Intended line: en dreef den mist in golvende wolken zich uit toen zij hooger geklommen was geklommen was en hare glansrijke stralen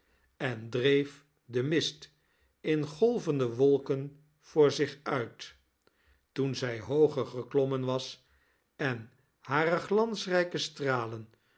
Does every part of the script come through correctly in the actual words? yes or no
no